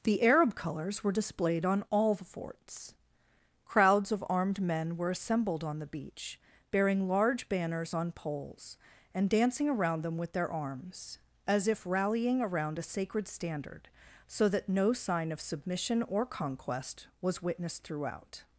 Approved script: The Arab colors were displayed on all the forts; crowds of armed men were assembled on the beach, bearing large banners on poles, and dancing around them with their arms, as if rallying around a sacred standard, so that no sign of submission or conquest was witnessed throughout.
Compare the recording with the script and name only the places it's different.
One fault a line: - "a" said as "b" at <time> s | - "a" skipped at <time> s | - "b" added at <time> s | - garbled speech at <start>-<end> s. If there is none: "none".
none